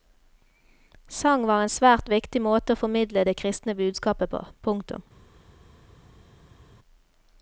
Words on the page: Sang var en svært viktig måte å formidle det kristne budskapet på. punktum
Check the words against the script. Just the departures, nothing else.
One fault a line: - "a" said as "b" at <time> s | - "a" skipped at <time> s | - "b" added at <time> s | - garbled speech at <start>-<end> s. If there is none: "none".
none